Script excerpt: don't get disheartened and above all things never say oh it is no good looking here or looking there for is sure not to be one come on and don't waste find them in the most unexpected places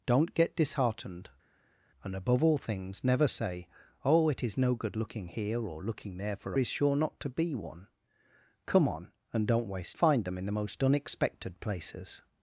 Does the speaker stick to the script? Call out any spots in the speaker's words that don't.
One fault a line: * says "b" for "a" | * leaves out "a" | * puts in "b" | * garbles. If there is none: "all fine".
all fine